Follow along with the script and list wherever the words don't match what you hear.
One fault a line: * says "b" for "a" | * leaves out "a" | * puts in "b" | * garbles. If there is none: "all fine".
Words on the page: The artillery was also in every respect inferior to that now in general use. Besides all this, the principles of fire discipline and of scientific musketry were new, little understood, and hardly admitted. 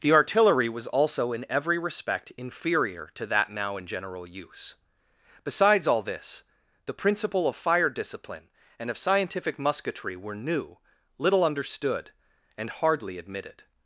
* says "principle" for "principles"